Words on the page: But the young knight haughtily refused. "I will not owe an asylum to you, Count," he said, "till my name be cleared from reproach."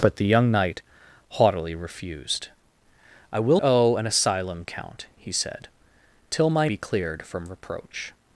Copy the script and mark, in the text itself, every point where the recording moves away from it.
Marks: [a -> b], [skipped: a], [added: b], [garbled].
But the young knight haughtily refused. "I will [skipped: not] owe an asylum [skipped: to you,] Count," he said, "till my [skipped: name] be cleared from reproach."